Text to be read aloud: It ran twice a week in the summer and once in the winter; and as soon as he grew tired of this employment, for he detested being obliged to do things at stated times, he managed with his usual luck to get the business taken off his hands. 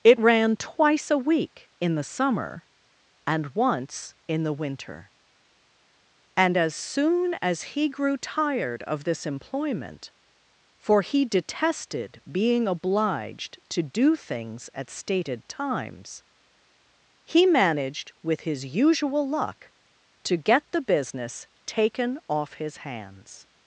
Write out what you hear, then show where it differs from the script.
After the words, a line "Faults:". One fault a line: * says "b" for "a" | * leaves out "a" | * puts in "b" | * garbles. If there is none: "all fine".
It ran twice a week in the summer and once in the winter; and as soon as he grew tired of this employment, for he detested being obliged to do things at stated times, he managed with his usual luck to get the business taken off his hands.
Faults:
all fine